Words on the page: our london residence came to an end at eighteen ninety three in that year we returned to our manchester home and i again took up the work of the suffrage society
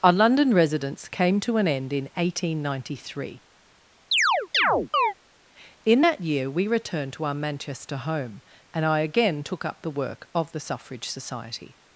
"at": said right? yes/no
no